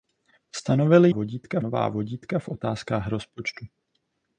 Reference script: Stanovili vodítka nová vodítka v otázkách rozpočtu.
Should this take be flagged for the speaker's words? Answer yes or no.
no